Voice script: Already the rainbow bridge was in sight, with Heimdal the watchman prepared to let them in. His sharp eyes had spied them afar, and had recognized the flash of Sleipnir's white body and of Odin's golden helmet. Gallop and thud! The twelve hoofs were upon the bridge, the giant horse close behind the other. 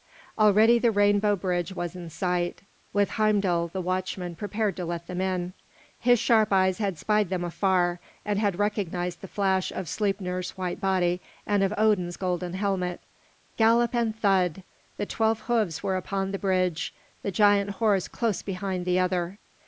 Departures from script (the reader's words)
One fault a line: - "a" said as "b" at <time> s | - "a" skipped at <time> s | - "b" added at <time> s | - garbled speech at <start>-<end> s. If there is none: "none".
none